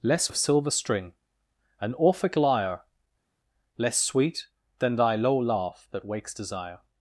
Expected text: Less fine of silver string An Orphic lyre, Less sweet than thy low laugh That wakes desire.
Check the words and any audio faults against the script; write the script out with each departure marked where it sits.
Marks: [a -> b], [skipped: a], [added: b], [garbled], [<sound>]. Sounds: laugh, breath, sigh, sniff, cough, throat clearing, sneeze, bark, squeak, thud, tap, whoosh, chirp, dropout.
Less [skipped: fine] of silver string An Orphic lyre, Less sweet than thy low laugh That wakes desire.